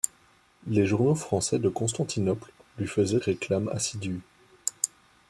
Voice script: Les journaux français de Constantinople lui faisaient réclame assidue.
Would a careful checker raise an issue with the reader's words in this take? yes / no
no